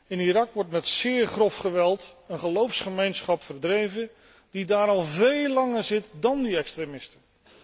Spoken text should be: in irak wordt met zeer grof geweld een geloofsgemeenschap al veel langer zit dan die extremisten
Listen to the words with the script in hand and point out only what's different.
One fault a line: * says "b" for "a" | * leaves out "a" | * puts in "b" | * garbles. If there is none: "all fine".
* puts in "verdreven die daar"